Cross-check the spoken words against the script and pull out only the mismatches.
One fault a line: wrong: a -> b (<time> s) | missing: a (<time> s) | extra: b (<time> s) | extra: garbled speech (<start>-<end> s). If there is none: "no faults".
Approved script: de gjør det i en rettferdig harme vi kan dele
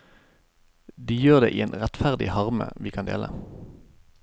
no faults